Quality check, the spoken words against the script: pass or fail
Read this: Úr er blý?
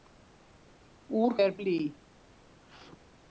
pass